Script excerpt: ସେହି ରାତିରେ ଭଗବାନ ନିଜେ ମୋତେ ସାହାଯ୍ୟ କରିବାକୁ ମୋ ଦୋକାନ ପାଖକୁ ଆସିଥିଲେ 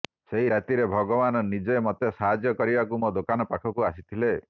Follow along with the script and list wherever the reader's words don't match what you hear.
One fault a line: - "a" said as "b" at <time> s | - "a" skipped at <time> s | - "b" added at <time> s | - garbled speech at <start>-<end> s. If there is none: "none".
none